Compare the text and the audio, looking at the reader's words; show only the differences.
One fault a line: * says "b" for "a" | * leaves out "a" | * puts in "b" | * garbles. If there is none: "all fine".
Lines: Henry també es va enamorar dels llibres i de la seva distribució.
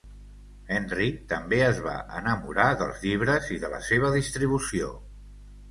all fine